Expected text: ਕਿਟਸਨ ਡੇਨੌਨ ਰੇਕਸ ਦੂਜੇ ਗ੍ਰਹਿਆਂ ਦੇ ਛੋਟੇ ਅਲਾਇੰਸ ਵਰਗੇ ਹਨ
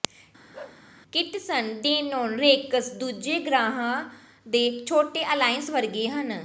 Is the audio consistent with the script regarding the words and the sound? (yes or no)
no